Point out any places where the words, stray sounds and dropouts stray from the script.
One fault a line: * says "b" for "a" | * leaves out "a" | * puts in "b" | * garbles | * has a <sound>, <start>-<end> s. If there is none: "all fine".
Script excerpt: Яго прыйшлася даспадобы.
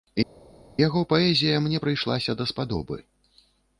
* puts in "паэзія мне"